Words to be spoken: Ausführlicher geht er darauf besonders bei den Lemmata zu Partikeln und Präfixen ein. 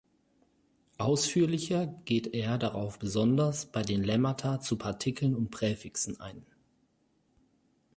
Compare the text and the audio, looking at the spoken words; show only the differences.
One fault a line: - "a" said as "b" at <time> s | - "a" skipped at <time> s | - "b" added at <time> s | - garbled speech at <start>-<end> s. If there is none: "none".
none